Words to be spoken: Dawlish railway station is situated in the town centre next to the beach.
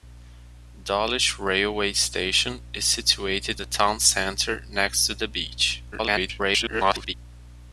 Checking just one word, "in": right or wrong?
wrong